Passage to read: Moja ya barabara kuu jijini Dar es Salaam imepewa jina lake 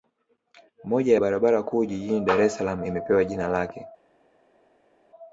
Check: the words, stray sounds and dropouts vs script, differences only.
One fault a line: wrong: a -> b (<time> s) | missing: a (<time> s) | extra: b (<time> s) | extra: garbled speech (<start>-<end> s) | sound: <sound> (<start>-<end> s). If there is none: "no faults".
no faults